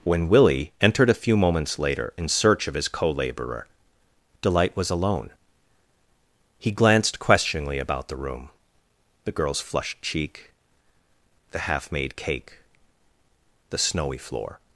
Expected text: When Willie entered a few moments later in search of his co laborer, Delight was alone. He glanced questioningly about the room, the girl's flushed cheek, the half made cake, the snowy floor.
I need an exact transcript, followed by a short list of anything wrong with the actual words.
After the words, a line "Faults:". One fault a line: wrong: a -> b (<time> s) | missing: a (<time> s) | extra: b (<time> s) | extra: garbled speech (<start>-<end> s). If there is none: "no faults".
When Willie entered a few moments later in search of his co laborer, Delight was alone. He glanced questioningly about the room, the girl's flushed cheek, the half made cake, the snowy floor.
Faults:
no faults